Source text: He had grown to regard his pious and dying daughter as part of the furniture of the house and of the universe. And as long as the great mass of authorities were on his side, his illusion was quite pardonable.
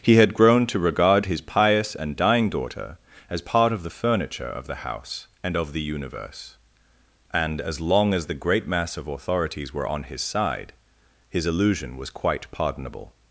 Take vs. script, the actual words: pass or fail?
pass